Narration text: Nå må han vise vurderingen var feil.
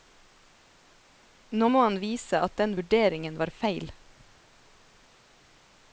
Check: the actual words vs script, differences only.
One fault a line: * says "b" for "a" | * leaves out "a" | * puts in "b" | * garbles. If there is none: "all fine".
* puts in "at den"